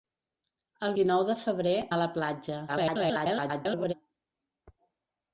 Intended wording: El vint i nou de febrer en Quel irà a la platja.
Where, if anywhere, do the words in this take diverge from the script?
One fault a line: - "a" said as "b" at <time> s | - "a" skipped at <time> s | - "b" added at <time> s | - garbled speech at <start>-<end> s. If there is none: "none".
- "vint" skipped at 0.9 s
- "en Quel irà" skipped at 1.7 s
- garbled speech at 2.7-3.9 s